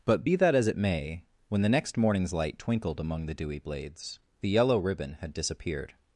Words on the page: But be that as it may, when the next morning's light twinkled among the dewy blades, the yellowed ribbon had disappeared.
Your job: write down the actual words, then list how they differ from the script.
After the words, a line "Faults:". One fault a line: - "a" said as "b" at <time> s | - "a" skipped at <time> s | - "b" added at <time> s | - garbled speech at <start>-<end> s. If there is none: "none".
But be that as it may, when the next morning's light twinkled among the dewy blades, the yellow ribbon had disappeared.
Faults:
- "yellowed" said as "yellow" at 4.5 s